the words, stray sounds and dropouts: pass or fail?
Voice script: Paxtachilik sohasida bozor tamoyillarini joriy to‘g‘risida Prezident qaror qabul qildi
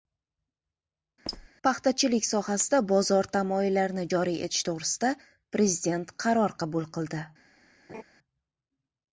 fail